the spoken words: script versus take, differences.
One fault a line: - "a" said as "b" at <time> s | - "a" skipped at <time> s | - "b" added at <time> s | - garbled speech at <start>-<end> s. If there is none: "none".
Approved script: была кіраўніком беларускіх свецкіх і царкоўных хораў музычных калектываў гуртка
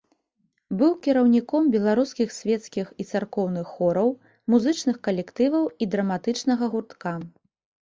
- "была" said as "быў" at 0.8 s
- "і драматычнага" added at 5.8 s